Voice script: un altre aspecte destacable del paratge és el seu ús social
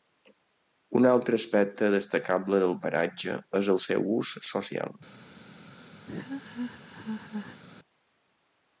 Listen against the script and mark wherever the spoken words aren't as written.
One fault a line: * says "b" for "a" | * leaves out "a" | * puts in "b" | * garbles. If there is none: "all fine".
all fine